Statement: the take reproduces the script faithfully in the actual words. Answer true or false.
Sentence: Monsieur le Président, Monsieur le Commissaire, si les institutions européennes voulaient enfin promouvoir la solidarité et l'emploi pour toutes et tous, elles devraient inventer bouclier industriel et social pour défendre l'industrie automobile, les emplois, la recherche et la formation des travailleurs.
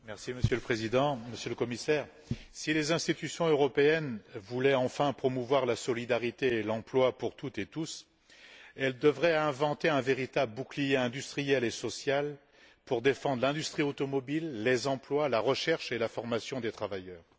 false